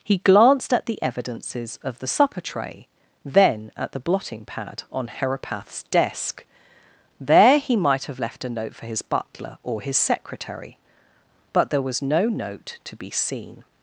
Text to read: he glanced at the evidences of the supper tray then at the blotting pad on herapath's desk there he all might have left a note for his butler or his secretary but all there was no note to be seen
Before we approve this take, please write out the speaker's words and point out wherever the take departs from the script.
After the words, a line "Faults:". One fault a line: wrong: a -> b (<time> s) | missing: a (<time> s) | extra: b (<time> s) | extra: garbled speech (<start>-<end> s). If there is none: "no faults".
he glanced at the evidences of the supper tray then at the blotting pad on herapath's desk there he might have left a note for his butler or his secretary but there was no note to be seen
Faults:
missing: all (7.7 s)
missing: all (11.7 s)